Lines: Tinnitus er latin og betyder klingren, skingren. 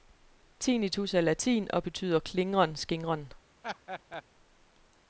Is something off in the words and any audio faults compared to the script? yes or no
yes